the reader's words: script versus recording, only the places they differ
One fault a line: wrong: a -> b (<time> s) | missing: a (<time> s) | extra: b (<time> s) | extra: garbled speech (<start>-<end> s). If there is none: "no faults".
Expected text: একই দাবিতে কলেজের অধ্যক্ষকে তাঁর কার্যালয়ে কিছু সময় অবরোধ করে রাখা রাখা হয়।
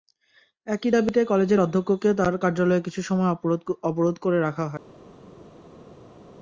missing: রাখা (4.6 s)